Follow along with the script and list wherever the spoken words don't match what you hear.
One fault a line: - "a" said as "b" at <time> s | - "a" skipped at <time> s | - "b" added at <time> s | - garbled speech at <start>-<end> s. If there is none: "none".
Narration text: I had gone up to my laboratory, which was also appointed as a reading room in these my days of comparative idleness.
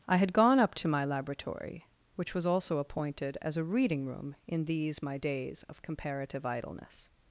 none